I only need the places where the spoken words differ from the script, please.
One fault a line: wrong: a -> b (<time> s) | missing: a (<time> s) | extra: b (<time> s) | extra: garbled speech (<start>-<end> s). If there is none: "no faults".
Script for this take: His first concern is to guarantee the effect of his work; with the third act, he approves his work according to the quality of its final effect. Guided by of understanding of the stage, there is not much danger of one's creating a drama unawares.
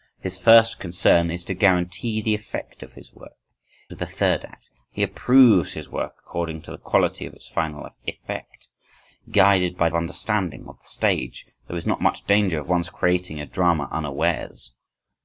no faults